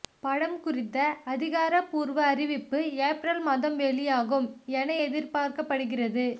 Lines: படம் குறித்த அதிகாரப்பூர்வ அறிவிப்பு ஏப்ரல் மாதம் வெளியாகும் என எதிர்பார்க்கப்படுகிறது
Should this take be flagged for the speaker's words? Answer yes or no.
no